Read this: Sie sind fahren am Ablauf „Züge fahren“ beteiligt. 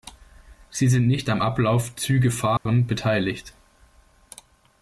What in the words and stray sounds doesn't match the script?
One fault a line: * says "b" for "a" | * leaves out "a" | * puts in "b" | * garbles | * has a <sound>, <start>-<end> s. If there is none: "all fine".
* says "nicht" for "fahren"
* has a dropout, 2.6-2.7 s